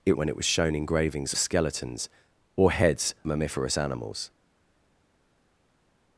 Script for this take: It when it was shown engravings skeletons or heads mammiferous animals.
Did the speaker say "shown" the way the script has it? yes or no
yes